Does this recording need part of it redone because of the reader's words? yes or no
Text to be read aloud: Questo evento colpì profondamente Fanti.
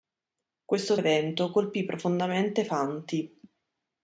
no